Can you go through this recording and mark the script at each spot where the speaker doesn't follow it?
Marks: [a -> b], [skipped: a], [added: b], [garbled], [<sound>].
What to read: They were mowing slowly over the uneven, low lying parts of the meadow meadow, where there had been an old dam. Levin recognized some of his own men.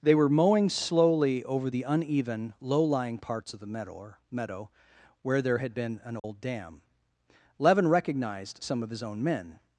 They were mowing slowly over the uneven, low lying parts of the meadow meadow, where there had been an old [dropout] dam. Levin recognized some of his own men.